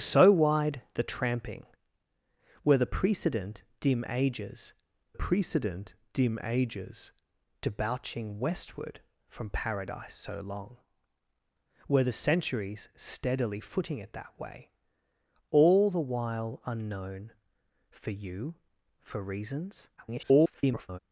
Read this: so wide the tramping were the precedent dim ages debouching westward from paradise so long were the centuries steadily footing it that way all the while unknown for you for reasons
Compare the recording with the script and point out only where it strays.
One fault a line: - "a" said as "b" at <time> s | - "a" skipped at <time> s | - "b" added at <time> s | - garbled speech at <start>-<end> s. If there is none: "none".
- "precedent dim ages" added at 5.1 s
- garbled speech at 20.0-21.0 s